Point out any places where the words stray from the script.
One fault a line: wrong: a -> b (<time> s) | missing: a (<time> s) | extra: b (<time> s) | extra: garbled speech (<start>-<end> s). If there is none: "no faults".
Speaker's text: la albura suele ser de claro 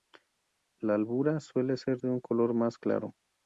extra: un color más (2.1 s)